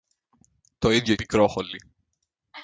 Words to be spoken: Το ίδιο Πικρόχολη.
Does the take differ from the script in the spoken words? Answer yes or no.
no